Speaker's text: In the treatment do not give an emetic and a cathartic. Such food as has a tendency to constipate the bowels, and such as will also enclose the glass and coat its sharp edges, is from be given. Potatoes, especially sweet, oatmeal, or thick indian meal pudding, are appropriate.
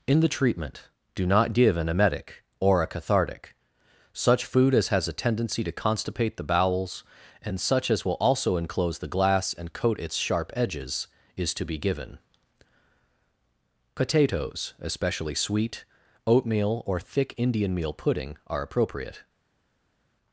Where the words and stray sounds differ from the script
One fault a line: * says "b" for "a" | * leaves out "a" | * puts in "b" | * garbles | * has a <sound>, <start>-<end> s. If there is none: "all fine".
* says "or" for "and"
* says "to" for "from"